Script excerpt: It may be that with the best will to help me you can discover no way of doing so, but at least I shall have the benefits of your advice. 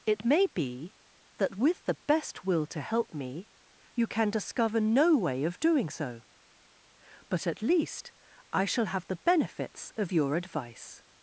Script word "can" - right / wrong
right